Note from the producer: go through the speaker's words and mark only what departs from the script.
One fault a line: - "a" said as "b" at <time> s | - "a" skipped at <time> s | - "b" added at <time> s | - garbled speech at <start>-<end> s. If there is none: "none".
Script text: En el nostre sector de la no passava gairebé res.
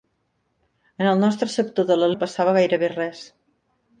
none